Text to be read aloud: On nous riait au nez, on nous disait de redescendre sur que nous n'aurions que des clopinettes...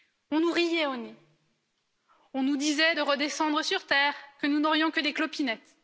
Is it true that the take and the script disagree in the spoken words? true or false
true